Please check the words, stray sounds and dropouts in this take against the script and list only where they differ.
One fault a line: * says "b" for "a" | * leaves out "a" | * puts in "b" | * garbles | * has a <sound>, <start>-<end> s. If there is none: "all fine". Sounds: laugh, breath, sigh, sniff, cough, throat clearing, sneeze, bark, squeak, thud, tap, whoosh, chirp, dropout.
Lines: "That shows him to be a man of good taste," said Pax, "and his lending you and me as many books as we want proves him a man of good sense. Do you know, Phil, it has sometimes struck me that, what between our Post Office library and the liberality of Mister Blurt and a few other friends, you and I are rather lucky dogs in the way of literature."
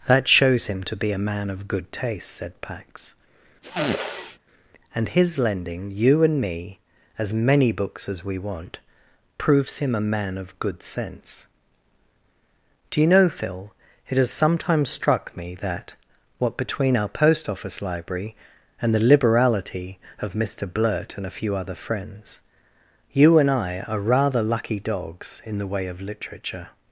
* has a sniff, 3.6-4.4 s